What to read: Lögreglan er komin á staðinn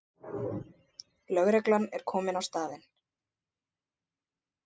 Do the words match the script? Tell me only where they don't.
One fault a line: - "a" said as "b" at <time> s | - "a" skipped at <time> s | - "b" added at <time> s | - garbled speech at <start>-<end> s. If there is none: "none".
none